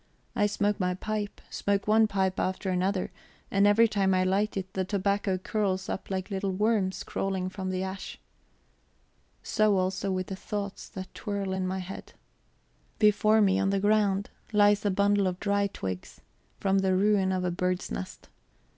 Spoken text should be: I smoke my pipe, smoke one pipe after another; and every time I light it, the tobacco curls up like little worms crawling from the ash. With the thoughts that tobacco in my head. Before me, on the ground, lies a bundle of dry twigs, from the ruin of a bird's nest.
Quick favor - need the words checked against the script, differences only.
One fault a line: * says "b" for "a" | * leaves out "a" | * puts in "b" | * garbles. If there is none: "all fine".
* puts in "So also"
* says "twirl" for "tobacco"